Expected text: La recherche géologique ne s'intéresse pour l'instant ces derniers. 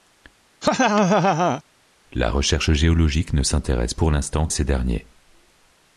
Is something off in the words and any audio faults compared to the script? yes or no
yes